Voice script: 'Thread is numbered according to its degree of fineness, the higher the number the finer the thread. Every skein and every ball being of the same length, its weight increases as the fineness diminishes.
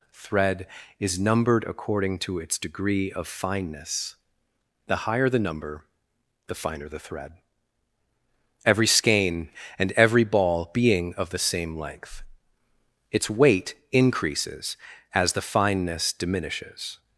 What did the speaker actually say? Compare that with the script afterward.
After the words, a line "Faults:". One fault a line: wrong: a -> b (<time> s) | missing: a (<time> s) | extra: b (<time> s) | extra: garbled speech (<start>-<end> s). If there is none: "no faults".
'Thread is numbered according to its degree of fineness, the higher the number the finer the thread. Every skein and every ball being of the same length, its weight increases as the fineness diminishes.
Faults:
no faults